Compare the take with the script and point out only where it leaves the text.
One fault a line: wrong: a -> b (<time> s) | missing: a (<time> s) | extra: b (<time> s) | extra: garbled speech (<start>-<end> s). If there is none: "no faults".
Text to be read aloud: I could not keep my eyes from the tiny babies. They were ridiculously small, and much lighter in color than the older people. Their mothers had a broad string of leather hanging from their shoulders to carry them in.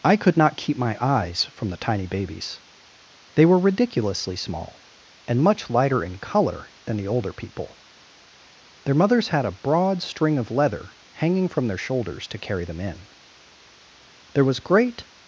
extra: There was great (14.3 s)